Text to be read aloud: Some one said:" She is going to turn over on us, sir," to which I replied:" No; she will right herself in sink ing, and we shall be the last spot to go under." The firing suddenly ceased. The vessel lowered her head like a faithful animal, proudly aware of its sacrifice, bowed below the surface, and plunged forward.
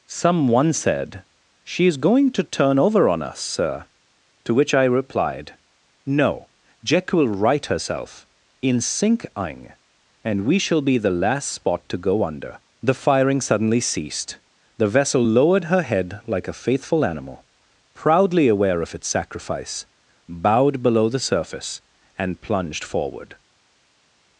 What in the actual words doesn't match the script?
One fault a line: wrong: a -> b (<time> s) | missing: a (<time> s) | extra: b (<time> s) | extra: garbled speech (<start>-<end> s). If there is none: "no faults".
wrong: she -> jack (6.8 s)